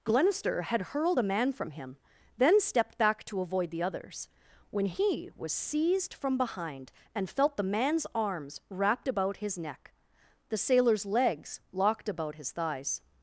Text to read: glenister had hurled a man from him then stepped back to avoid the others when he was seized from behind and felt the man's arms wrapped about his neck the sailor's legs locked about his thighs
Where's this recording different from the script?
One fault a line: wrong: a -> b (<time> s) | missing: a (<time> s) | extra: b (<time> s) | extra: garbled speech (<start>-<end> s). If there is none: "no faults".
no faults